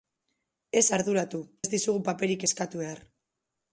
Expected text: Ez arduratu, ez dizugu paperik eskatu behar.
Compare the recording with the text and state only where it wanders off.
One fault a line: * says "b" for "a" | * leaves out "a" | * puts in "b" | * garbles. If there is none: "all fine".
all fine